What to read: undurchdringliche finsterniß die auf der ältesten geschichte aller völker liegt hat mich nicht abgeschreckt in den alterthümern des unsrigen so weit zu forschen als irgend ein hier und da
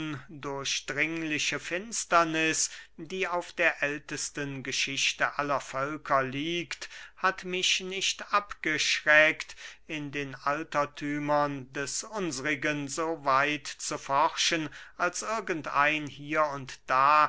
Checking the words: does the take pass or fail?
pass